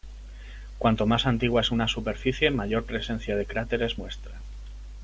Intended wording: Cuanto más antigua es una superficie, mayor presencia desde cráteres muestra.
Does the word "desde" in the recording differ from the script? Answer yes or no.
yes